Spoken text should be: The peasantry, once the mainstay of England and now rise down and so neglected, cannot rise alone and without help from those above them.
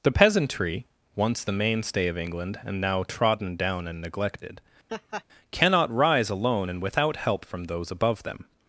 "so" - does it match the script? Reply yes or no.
no